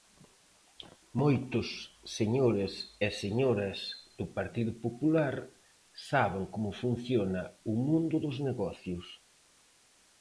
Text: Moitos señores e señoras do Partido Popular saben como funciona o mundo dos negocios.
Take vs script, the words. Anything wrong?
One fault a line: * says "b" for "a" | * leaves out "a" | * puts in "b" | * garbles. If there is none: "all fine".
all fine